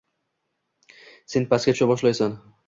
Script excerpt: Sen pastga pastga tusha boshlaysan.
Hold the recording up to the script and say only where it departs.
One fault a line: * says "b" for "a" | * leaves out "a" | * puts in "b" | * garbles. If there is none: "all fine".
* leaves out "pastga"